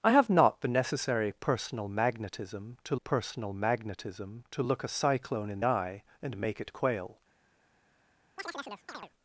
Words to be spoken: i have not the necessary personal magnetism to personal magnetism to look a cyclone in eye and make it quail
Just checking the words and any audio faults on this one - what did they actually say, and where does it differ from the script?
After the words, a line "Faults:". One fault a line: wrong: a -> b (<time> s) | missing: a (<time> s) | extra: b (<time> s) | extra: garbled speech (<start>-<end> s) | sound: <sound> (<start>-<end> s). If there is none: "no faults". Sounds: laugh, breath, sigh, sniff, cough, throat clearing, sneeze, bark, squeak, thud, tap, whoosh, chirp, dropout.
i have not the necessary personal magnetism to personal magnetism to look a cyclone in eye and make it quail
Faults:
sound: chirp (8.4-9.1 s)